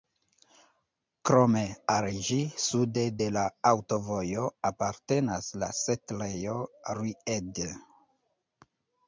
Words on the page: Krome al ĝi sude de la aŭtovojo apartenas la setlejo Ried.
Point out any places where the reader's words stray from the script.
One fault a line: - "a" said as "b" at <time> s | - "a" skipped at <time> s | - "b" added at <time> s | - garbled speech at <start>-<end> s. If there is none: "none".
none